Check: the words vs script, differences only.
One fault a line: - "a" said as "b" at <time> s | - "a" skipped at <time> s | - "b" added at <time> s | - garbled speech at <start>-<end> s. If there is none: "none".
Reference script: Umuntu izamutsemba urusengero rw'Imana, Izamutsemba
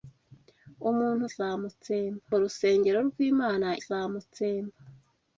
none